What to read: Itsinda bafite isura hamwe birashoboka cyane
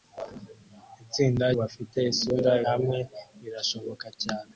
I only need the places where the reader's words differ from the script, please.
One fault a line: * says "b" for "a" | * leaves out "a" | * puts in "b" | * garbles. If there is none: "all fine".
all fine